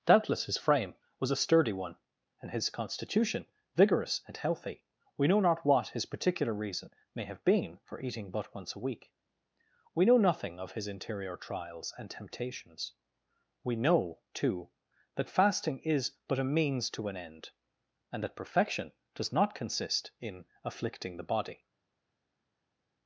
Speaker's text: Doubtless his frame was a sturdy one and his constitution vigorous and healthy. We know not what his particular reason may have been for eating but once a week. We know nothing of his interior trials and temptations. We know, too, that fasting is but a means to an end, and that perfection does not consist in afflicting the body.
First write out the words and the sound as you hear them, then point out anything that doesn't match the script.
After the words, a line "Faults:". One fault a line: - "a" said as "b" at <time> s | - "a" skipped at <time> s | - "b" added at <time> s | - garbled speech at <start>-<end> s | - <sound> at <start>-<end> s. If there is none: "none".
Doubtless his frame was a sturdy one and his constitution vigorous and healthy. We know not what his particular reason may have been for eating but once a week. We know nothing of his interior trials and temptations. We know, too, that fasting is but a means to an end, and that perfection does not consist in afflicting the body.
Faults:
none